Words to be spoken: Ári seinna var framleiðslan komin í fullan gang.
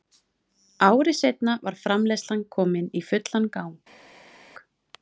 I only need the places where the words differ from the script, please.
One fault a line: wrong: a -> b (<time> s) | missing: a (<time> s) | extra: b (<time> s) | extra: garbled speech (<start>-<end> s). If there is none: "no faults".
no faults